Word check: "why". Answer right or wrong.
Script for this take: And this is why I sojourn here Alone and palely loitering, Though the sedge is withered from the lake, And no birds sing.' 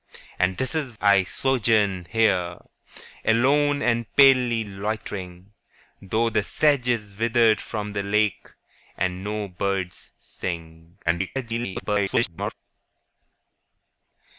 wrong